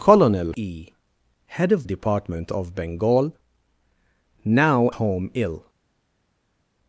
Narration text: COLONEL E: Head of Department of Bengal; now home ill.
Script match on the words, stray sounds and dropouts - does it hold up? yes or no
yes